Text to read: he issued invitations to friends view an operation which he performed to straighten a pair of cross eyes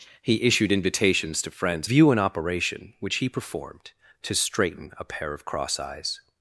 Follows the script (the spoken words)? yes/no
yes